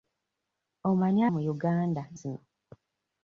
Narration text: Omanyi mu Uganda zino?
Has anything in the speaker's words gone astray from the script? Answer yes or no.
no